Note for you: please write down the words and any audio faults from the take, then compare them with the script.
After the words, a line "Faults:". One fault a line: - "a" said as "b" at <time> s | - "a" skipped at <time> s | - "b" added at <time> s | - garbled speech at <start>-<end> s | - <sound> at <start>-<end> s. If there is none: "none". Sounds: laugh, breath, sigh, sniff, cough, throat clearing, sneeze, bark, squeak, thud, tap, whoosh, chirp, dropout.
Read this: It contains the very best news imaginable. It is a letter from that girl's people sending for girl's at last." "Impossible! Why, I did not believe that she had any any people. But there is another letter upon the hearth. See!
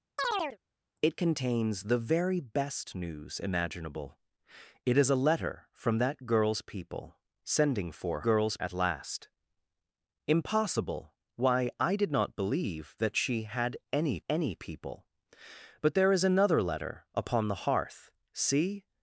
It contains the very best news imaginable. It is a letter from that girl's people sending for girl's at last." "Impossible! Why, I did not believe that she had any any people. But there is another letter upon the hearth. See!
Faults:
- chirp at 0.2-0.6 s